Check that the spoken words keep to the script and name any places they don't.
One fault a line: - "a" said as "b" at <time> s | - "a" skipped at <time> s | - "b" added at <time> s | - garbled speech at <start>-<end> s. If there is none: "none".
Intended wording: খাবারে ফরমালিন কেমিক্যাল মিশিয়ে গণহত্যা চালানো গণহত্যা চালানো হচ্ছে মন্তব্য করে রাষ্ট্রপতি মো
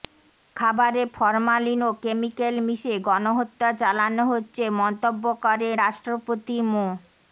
- "ও" added at 1.8 s
- "গণহত্যা চালানো" skipped at 4.2 s